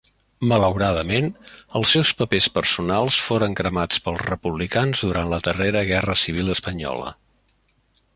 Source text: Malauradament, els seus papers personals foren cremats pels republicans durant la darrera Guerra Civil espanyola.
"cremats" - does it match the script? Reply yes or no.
yes